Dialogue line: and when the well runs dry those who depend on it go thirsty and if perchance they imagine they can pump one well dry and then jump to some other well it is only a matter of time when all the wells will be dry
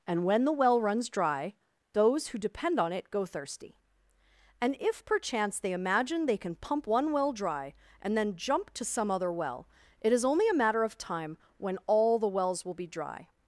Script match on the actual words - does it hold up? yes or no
yes